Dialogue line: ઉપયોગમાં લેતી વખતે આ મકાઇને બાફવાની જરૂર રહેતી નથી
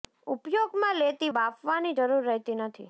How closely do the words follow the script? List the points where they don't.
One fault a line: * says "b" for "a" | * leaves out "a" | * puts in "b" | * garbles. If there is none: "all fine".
* leaves out "વખતે આ મકાઇને"